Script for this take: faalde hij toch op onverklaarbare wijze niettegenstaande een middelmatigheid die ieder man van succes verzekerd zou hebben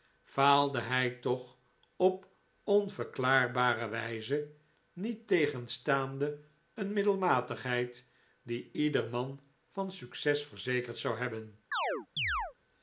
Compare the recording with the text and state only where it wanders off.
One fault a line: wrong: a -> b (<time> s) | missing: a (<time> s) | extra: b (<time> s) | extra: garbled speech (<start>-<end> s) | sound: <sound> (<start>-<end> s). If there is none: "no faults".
sound: chirp (11.7-12.5 s)